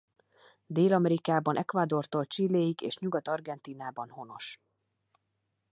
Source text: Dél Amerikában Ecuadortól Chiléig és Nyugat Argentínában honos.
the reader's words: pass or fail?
pass